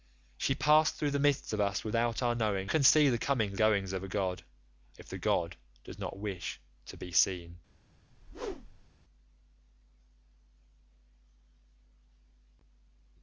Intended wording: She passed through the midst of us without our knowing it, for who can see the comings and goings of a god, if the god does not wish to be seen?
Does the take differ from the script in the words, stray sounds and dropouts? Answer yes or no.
yes